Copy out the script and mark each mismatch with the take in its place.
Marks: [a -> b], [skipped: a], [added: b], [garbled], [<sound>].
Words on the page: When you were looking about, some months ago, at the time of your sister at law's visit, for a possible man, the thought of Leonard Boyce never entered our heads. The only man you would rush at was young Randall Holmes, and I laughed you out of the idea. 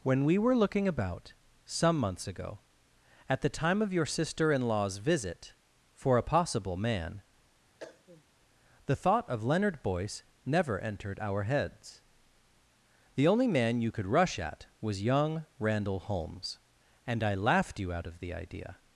When [you -> we] were looking about, some months ago, at the time of your sister [at -> in] law's visit, for a possible man, [cough] the thought of Leonard Boyce never entered our heads. The only man you [would -> could] rush at was young Randall Holmes, and I laughed you out of the idea.